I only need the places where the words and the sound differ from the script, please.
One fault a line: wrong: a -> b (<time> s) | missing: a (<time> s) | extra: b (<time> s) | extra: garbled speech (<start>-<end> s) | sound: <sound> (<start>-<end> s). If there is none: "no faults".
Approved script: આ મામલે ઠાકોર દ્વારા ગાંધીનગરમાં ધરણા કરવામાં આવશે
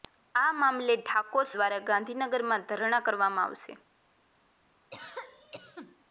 sound: cough (4.9-6.0 s)